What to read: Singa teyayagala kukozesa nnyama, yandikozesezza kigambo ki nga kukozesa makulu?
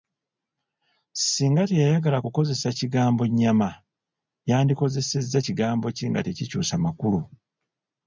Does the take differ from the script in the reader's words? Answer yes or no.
yes